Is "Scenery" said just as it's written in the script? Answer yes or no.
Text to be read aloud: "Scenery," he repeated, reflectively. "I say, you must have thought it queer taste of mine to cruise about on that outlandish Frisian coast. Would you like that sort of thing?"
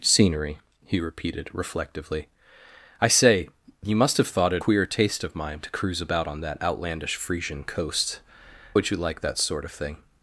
yes